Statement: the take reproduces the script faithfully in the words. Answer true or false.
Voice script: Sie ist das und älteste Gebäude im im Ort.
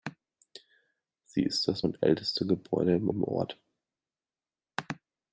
true